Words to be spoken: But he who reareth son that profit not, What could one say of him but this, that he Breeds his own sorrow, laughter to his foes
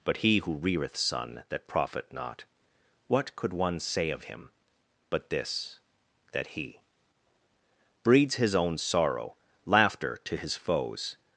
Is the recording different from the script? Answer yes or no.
no